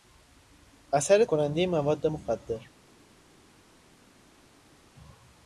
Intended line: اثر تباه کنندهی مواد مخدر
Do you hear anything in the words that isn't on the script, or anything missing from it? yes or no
yes